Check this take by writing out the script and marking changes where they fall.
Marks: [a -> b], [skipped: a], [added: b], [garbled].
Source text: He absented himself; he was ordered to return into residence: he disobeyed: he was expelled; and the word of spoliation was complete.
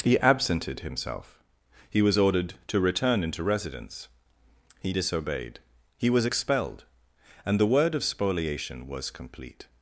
He absented himself; he was ordered to return into residence: he disobeyed: he was expelled; and the word of spoliation was complete.